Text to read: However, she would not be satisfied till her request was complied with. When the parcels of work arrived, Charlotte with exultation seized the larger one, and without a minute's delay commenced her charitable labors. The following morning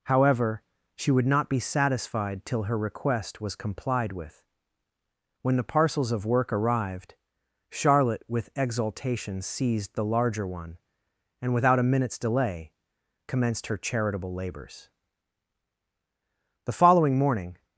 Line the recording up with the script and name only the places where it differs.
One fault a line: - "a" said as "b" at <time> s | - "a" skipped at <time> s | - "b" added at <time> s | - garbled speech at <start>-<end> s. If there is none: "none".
none